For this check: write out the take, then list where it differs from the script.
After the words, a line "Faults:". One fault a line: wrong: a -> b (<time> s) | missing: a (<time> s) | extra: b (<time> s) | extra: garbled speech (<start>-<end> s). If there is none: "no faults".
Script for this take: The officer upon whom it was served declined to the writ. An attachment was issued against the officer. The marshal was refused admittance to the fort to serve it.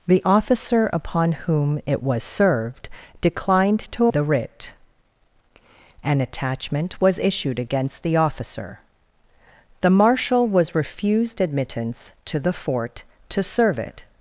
The officer upon whom it was served declined to the writ. An attachment was issued against the officer. The marshal was refused admittance to the fort to serve it.
Faults:
no faults